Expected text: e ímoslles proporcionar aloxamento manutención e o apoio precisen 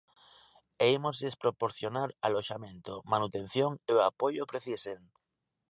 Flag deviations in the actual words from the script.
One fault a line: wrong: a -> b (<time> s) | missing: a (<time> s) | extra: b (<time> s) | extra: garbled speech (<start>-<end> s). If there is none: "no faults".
no faults